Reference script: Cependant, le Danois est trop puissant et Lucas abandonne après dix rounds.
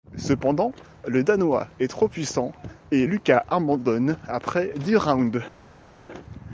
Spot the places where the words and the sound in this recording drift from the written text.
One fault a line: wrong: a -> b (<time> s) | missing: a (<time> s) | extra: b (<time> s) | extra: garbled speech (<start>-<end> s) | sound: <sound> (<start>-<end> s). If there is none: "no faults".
no faults